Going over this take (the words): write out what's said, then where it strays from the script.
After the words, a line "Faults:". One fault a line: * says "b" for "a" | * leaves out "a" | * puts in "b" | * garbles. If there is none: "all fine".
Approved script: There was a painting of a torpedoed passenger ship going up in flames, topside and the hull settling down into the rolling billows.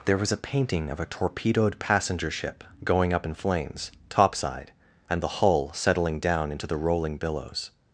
There was a painting of a torpedoed passenger ship going up in flames, topside and the hull settling down into the rolling billows.
Faults:
all fine